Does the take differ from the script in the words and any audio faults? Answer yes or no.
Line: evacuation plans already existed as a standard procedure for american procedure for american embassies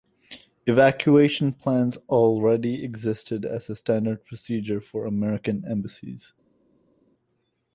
yes